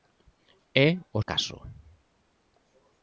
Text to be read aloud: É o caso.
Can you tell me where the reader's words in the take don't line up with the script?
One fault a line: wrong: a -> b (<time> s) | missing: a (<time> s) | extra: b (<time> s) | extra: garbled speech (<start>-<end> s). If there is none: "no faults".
no faults